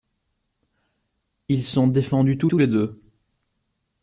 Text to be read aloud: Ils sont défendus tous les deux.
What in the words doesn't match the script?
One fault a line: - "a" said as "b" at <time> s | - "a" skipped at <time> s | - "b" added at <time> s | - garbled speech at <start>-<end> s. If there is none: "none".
- "tous" added at 2.5 s